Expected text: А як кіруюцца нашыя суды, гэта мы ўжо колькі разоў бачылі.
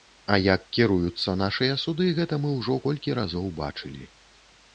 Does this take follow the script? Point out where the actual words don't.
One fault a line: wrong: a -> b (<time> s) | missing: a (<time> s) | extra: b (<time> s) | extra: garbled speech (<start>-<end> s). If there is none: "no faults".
no faults